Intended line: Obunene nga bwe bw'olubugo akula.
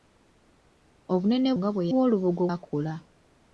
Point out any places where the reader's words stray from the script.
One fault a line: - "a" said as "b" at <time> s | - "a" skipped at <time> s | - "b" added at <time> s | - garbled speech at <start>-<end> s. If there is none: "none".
none